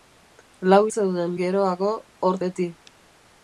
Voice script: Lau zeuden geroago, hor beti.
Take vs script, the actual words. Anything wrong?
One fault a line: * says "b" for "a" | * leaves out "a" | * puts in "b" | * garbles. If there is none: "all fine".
all fine